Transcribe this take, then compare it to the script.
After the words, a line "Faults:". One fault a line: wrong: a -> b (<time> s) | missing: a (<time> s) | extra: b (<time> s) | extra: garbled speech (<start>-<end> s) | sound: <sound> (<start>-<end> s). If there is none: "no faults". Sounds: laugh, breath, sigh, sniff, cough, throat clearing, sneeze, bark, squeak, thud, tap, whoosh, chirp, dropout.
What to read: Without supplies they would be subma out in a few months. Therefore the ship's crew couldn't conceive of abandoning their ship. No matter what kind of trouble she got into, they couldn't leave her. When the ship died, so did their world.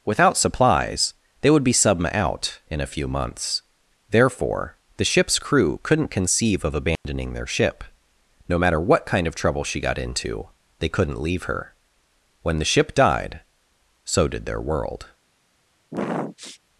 Without supplies they would be subma out in a few months. Therefore the ship's crew couldn't conceive of abandoning their ship. No matter what kind of trouble she got into, they couldn't leave her. When the ship died, so did their world.
Faults:
sound: dropout (7.0-7.0 s)
sound: sniff (15.9-16.6 s)